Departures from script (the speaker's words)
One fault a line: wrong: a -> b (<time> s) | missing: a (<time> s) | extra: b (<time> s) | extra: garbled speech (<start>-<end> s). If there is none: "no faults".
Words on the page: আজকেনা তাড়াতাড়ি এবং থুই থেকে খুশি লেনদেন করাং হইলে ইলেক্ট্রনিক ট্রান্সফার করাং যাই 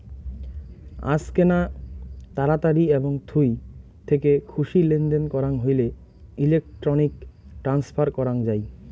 no faults